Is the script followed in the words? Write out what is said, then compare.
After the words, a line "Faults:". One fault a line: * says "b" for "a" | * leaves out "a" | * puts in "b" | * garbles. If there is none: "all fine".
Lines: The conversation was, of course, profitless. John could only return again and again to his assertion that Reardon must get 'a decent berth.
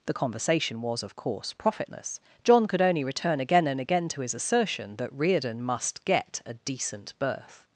The conversation was, of course, profitless. John could only return again and again to his assertion that Reardon must get 'a decent berth.
Faults:
all fine